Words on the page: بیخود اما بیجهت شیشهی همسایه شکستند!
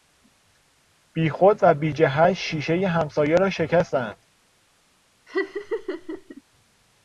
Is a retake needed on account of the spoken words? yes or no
yes